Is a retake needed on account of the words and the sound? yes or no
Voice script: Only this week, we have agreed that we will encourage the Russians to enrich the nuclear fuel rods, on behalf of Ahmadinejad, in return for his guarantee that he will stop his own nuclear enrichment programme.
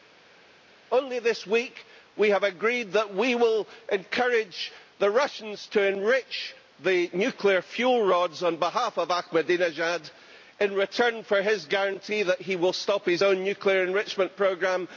no